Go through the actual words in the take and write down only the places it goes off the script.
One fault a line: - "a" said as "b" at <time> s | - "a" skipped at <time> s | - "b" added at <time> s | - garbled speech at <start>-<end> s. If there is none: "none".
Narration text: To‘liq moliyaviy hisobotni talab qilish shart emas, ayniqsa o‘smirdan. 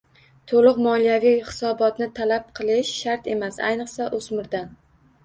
none